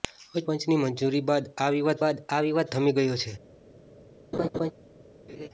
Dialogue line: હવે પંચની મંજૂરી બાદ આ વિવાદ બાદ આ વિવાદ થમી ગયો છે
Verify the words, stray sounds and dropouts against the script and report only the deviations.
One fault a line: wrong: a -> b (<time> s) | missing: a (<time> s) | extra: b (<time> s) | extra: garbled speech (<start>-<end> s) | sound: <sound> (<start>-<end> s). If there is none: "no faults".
sound: laugh (4.3-4.7 s)
sound: laugh (5.3-5.5 s)